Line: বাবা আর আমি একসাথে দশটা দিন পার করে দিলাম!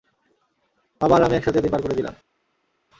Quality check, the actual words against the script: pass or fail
fail